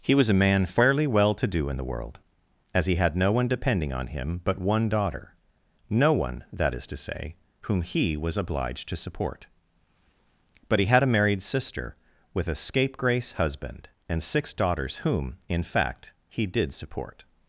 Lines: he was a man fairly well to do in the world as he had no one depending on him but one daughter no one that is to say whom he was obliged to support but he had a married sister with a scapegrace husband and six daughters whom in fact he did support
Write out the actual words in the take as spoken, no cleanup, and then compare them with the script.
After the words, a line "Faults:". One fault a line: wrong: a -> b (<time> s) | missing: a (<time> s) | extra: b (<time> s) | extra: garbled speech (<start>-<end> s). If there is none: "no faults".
he was a man fairly well to do in the world as he had no one depending on him but one daughter no one that is to say whom he was obliged to support but he had a married sister with a scapegrace husband and six daughters whom in fact he did support
Faults:
no faults